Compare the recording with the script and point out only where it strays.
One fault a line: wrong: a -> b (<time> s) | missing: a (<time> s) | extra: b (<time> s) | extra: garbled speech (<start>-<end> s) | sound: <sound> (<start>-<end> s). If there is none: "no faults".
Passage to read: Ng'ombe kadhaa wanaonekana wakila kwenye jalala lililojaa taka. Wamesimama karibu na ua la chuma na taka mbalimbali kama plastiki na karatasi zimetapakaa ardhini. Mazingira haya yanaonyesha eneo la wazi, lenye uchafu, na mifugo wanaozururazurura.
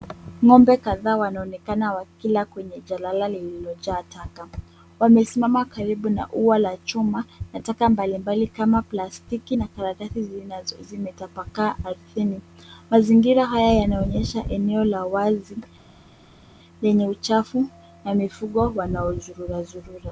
no faults